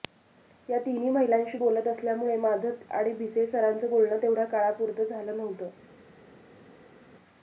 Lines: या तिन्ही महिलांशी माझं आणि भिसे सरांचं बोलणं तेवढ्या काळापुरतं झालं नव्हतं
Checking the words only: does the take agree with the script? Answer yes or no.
no